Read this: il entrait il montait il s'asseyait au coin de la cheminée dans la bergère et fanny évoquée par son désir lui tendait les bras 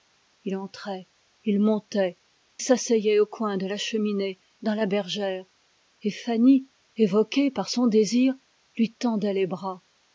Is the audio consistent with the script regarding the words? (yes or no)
no